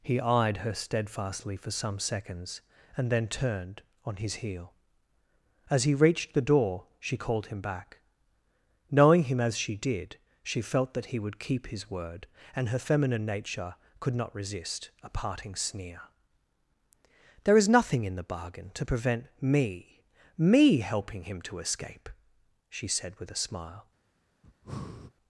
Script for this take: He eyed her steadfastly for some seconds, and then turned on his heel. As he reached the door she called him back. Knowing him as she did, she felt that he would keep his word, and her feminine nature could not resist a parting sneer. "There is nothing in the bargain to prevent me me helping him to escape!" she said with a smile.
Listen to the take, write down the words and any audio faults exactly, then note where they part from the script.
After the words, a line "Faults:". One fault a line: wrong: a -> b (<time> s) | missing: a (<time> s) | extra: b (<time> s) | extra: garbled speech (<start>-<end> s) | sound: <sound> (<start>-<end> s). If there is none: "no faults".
He eyed her steadfastly for some seconds, and then turned on his heel. As he reached the door she called him back. Knowing him as she did, she felt that he would keep his word, and her feminine nature could not resist a parting sneer. "There is nothing in the bargain to prevent me me helping him to escape!" she said with a smile.
Faults:
sound: breath (24.4-25.1 s)